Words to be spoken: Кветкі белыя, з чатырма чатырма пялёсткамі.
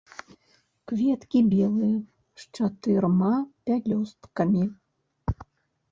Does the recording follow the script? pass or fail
fail